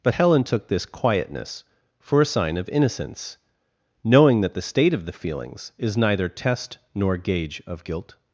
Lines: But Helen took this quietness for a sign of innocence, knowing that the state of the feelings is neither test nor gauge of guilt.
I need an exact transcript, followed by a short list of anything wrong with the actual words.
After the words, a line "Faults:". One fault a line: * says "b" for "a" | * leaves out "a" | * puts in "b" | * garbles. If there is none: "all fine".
But Helen took this quietness for a sign of innocence, knowing that the state of the feelings is neither test nor gauge of guilt.
Faults:
all fine